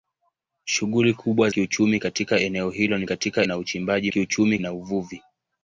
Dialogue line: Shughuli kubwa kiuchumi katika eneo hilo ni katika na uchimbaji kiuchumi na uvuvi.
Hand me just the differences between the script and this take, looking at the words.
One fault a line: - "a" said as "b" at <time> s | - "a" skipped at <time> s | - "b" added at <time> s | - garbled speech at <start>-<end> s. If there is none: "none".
none